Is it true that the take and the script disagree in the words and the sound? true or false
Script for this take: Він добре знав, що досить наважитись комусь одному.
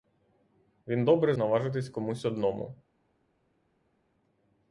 true